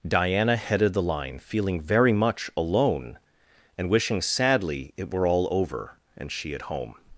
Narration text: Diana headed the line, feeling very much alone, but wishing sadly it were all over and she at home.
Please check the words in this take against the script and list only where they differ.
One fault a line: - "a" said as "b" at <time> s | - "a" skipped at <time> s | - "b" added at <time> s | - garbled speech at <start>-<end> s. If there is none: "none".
- "but" said as "and" at 3.8 s